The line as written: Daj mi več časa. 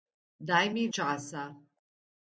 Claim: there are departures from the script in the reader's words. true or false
true